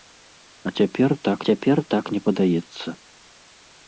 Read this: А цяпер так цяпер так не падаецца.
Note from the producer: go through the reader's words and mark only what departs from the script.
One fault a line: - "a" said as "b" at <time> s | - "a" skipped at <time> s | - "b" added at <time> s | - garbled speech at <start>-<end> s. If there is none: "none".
none